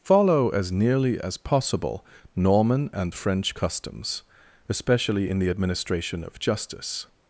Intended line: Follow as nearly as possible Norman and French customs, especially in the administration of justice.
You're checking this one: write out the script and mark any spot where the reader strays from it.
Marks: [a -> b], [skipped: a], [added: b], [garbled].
Follow as nearly as possible Norman and French customs, especially in the administration of justice.